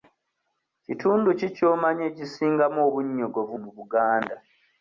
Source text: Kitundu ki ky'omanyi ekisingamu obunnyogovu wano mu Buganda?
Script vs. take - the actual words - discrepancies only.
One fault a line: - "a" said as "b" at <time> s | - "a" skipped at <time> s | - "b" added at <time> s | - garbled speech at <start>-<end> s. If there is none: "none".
- "wano" skipped at 3.5 s